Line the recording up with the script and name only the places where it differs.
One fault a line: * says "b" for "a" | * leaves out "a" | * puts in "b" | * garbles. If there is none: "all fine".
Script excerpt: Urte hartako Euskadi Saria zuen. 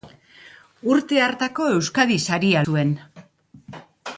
all fine